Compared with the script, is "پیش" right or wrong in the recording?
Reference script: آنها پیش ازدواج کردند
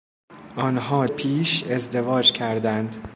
right